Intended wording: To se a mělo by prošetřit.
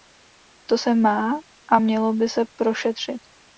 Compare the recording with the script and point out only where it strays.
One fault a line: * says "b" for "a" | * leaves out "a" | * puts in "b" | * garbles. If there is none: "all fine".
* puts in "má"
* puts in "se"